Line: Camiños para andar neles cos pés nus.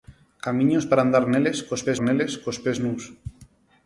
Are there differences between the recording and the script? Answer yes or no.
yes